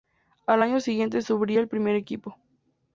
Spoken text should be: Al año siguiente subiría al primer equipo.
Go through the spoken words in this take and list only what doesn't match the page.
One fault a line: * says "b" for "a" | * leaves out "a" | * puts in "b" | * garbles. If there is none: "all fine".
all fine